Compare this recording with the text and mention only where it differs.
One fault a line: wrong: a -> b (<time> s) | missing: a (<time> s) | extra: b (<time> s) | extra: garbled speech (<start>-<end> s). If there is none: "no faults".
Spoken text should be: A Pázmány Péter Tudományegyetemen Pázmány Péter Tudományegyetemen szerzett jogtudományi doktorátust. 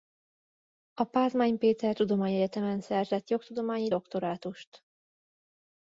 missing: Pázmány Péter Tudományegyetemen (2.8 s)